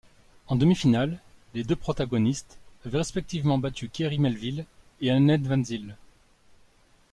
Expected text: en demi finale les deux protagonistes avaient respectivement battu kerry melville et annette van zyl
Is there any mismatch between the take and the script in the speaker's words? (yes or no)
no